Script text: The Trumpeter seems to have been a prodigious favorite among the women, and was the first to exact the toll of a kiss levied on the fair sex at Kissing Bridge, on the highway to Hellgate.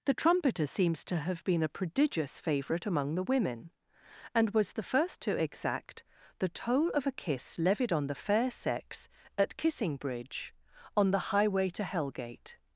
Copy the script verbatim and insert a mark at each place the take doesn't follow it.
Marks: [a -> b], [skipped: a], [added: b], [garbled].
The Trumpeter seems to have been a prodigious favorite among the women, and was the first to exact the toll of a kiss levied on the fair sex at Kissing Bridge, on the highway to Hellgate.